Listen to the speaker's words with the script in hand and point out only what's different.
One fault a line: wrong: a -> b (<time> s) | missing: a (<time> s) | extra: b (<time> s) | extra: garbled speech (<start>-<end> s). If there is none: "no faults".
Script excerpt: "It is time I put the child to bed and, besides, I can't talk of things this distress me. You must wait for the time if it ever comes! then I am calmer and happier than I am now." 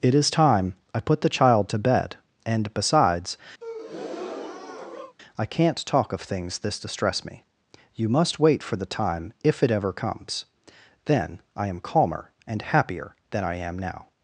no faults